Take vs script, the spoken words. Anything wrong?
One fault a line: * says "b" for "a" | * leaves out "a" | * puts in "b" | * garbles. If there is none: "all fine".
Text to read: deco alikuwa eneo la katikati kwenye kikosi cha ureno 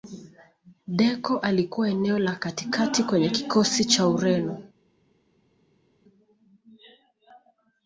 all fine